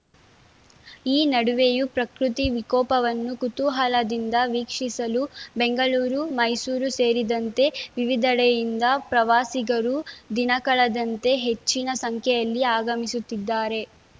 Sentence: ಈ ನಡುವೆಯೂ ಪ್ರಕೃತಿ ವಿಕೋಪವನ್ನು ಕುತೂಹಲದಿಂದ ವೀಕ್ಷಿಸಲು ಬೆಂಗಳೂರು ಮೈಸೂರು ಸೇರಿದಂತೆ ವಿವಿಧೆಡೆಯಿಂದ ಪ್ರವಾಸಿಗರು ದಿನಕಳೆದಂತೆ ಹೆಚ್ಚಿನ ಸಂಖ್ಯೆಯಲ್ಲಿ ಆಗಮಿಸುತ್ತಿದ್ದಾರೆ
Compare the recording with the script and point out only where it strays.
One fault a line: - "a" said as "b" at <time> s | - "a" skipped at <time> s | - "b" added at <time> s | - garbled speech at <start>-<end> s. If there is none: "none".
none